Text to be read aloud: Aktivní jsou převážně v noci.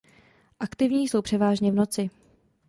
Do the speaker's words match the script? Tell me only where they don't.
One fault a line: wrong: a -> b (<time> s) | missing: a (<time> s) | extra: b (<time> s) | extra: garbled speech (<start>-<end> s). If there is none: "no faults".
no faults